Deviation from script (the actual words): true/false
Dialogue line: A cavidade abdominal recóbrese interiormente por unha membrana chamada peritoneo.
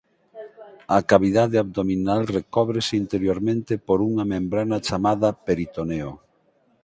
false